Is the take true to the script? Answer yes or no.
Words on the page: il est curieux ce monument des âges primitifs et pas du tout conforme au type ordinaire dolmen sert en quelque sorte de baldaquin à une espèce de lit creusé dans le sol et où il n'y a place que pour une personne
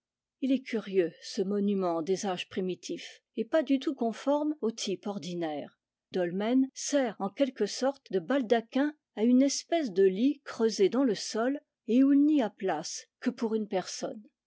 yes